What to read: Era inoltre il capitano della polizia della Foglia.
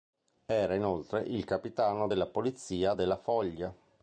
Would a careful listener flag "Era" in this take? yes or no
no